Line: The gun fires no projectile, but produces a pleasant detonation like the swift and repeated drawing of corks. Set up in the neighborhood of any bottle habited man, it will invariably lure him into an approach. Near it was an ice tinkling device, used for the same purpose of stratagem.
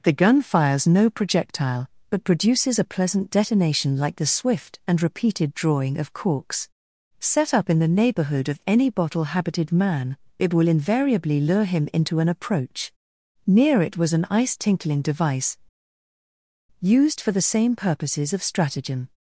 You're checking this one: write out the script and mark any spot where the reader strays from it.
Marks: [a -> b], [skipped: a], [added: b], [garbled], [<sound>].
The gun fires no projectile, but produces a pleasant detonation like the swift and repeated drawing of corks. Set up in the neighborhood of any bottle habited man, it will invariably lure him into an approach. Near it was an ice tinkling device, used for the same [purpose -> purposes] of stratagem.